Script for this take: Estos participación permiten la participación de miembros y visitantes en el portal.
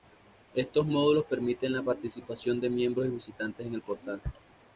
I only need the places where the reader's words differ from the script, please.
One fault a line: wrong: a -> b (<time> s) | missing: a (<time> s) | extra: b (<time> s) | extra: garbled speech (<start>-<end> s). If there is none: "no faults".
wrong: participación -> módulos (0.9 s)